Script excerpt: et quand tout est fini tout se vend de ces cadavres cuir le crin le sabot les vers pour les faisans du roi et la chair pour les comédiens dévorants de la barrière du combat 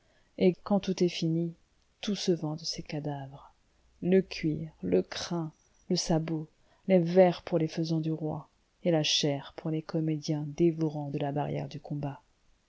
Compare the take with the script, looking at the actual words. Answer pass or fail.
fail